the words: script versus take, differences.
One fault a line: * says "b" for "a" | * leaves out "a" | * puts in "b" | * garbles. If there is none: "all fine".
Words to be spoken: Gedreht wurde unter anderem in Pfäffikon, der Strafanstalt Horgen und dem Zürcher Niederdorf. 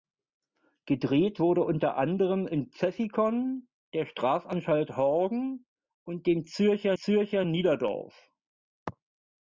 * puts in "Zürcher"